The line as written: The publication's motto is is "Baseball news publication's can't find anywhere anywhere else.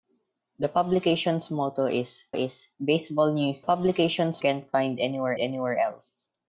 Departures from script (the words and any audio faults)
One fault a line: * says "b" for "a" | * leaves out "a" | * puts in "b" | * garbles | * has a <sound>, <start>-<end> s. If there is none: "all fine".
all fine